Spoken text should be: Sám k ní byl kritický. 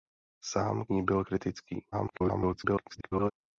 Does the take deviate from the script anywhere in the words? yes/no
yes